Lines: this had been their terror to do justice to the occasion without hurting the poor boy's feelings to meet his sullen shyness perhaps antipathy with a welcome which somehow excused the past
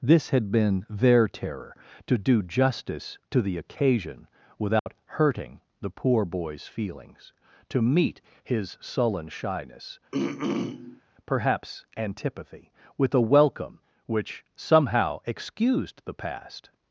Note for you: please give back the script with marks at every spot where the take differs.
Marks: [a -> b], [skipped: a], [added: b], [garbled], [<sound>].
this had been their terror to do justice to the occasion without [dropout] hurting the poor boy's feelings to meet his sullen shyness [throat clearing] perhaps antipathy with a welcome which somehow excused the past